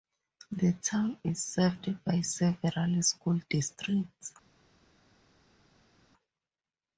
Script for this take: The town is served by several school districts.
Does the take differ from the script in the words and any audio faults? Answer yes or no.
no